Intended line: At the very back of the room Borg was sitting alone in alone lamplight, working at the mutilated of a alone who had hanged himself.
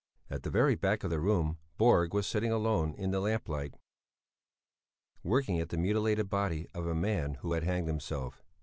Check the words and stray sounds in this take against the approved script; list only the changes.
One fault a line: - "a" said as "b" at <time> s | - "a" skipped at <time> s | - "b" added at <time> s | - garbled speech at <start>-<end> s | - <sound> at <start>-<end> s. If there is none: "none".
- "alone" said as "the" at 3.1 s
- "body" added at 6.3 s
- "alone" said as "man" at 6.9 s